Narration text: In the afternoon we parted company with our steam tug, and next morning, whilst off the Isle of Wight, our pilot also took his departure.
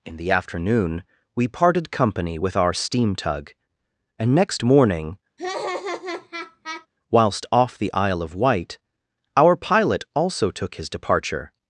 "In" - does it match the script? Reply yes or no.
yes